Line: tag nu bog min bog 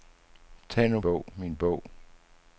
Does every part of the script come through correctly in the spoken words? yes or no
yes